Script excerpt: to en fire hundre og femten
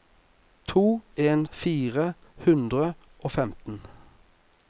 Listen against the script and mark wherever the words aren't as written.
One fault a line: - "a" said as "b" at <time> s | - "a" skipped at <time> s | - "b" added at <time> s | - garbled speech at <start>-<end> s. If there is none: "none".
none